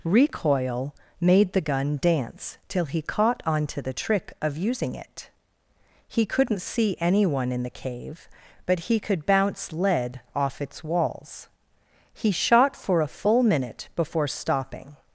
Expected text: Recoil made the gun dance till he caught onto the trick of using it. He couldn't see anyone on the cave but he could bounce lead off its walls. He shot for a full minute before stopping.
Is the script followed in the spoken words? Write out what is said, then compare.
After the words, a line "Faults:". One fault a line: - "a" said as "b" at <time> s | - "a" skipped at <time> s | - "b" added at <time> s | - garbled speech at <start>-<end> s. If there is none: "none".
Recoil made the gun dance till he caught onto the trick of using it. He couldn't see anyone in the cave but he could bounce lead off its walls. He shot for a full minute before stopping.
Faults:
- "on" said as "in" at 7.5 s